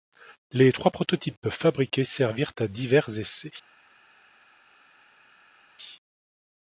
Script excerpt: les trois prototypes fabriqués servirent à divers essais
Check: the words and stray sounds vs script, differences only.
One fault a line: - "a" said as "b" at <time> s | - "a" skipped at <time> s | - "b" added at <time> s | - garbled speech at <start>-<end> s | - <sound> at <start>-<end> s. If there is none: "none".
none